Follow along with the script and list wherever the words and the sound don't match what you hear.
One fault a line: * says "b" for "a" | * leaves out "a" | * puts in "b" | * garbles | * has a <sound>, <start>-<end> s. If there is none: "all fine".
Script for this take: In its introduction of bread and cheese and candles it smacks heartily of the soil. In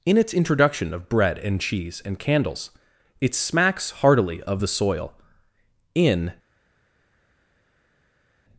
all fine